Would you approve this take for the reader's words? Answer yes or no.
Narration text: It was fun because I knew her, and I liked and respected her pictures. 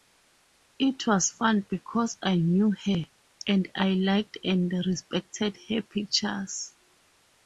yes